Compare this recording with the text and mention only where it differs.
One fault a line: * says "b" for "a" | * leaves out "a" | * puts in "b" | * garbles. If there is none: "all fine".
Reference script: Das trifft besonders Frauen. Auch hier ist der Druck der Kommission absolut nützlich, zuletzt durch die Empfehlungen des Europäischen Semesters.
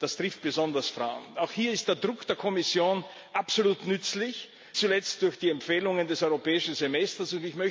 all fine